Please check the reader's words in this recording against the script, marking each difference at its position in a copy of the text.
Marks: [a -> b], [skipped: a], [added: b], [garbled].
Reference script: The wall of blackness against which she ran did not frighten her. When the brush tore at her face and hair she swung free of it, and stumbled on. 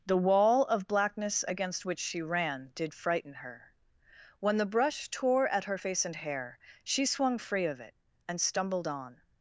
The wall of blackness against which she ran did [skipped: not] frighten her. When the brush tore at her face and hair she swung free of it, and stumbled on.